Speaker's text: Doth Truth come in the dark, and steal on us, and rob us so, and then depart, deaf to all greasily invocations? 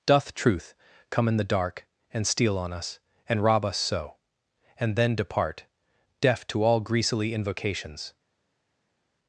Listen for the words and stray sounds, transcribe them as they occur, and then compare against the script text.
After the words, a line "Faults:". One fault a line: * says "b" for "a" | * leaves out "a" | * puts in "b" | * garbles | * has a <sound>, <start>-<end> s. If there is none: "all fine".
Doth Truth come in the dark, and steal on us, and rob us so, and then depart, deaf to all greasily invocations?
Faults:
all fine